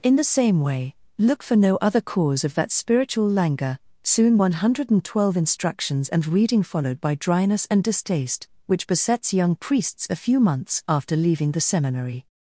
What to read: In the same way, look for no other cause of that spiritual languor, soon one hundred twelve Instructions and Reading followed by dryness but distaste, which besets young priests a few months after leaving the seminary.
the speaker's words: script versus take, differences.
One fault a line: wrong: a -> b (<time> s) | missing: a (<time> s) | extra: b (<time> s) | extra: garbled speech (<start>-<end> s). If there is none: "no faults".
wrong: but -> and (7.7 s)